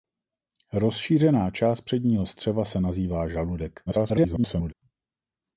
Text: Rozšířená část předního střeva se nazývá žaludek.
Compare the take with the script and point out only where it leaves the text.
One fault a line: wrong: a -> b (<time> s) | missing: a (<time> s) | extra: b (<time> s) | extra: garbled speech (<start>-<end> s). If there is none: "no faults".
extra: garbled speech (3.9-4.7 s)